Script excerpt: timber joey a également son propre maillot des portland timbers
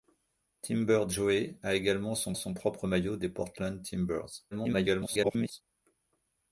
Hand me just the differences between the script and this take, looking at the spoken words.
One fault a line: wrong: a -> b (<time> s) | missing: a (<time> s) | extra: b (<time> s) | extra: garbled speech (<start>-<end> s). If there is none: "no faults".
extra: son (2.3 s)
extra: garbled speech (4.5-5.6 s)